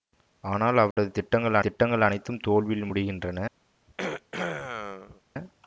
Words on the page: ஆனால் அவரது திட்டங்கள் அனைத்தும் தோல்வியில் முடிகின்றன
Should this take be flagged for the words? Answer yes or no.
yes